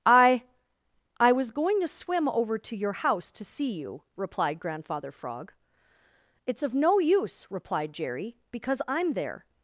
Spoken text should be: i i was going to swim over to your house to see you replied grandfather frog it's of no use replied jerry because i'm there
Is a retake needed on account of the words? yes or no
no